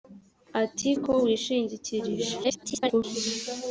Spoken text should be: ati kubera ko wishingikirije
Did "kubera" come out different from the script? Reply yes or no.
yes